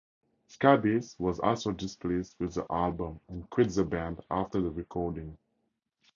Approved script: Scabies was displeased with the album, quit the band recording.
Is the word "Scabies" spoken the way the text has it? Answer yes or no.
yes